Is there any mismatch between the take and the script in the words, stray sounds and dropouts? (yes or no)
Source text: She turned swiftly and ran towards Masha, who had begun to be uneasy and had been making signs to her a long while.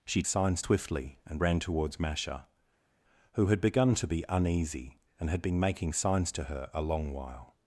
yes